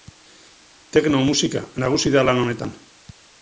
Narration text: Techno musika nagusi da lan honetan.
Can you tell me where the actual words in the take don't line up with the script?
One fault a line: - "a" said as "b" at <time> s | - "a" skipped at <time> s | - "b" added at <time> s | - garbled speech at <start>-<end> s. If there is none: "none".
none